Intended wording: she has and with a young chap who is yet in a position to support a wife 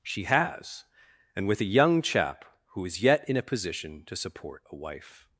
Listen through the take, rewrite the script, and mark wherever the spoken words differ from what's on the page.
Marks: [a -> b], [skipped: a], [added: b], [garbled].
she has and with a young chap who is yet in a position to support a wife